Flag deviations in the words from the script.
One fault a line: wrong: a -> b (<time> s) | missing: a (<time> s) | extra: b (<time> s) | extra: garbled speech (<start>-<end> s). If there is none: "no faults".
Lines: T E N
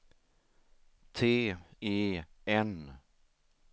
no faults